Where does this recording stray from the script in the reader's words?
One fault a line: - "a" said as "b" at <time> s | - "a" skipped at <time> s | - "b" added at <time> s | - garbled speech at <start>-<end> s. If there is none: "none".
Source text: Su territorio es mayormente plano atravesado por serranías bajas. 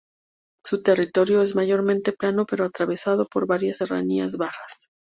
- "pero" added at 2.5 s
- "varias" added at 3.5 s